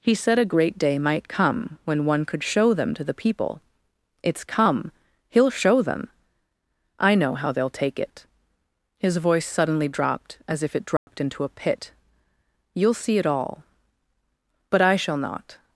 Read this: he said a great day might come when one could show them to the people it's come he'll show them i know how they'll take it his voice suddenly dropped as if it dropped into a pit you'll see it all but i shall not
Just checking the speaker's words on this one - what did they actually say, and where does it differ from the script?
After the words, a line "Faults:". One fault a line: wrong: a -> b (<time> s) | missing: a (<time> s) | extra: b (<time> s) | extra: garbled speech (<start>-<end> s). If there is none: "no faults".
he said a great day might come when one could show them to the people it's come he'll show them i know how they'll take it his voice suddenly dropped as if it dropped into a pit you'll see it all but i shall not
Faults:
no faults